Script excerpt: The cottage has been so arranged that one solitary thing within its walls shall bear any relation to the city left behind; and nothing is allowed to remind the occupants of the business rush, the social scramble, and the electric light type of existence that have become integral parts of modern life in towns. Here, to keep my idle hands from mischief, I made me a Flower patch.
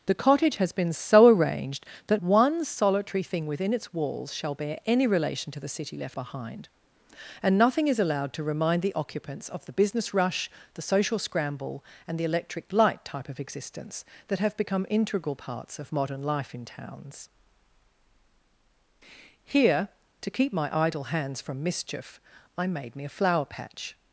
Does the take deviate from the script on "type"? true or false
false